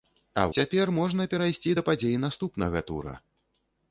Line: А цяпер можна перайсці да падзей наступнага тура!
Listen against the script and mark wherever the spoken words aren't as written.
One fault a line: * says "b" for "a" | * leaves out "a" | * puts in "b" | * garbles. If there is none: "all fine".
all fine